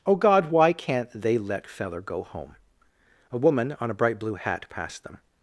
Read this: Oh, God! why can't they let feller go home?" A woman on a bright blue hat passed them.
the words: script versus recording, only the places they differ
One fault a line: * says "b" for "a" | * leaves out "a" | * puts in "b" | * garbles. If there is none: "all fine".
all fine